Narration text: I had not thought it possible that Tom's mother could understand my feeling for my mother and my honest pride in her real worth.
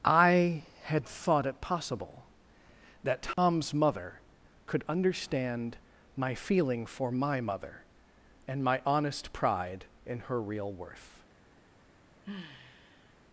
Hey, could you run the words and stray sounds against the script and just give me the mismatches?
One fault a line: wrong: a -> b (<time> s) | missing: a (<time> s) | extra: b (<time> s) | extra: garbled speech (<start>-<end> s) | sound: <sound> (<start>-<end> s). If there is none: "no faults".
missing: not (1.1 s)
sound: dropout (3.3-3.4 s)
sound: sigh (12.2-13.1 s)